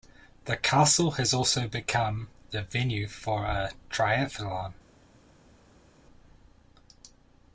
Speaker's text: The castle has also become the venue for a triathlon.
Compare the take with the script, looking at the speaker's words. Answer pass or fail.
pass